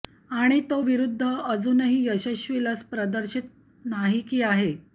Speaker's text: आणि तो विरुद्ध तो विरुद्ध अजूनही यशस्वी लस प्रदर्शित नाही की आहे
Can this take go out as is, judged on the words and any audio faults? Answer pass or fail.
fail